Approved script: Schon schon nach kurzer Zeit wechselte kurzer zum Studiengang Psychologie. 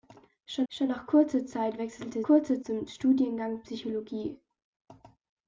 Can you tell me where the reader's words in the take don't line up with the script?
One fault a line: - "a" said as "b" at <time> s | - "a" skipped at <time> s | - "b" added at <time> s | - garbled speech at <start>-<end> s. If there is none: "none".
none